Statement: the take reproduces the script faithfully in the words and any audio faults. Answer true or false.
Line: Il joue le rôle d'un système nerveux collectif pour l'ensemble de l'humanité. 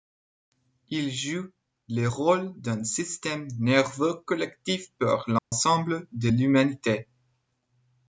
false